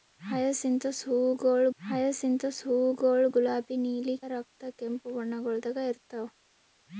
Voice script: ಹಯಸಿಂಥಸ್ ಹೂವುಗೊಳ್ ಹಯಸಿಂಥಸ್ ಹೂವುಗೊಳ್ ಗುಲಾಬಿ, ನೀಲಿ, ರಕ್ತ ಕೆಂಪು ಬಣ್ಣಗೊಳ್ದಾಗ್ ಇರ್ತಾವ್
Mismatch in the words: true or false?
false